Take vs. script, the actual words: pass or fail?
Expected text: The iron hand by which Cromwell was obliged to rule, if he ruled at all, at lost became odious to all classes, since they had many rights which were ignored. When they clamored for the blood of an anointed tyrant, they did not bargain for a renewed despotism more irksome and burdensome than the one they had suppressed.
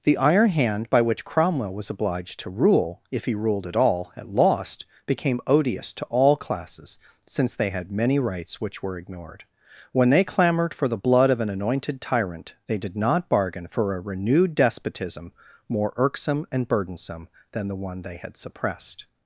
pass